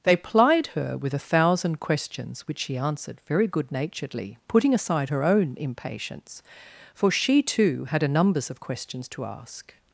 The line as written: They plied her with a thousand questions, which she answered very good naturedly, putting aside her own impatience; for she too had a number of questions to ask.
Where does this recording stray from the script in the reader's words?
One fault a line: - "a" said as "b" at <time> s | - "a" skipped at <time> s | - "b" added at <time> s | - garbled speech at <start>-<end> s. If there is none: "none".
- "number" said as "numbers" at 8.1 s